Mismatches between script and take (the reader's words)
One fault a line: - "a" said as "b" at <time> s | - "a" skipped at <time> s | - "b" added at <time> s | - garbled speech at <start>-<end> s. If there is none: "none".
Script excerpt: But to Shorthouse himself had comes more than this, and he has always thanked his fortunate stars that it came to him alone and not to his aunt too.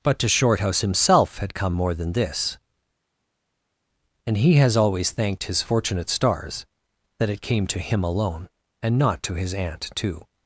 - "comes" said as "come" at 1.5 s